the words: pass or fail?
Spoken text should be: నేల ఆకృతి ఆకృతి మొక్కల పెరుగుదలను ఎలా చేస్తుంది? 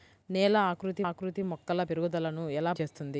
pass